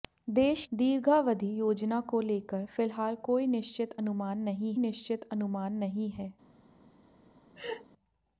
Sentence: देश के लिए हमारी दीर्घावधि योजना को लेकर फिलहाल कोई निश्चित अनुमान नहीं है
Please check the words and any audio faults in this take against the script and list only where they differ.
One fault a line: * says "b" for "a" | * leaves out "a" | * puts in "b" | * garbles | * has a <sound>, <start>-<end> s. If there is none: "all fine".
* leaves out "के लिए हमारी"
* puts in "निश्चित अनुमान नहीं"
* has a laugh, 7.6-7.9 s